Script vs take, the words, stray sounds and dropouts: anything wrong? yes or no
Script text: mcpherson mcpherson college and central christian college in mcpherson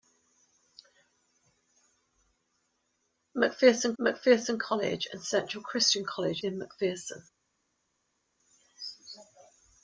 no